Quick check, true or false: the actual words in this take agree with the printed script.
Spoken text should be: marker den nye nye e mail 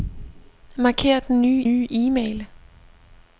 true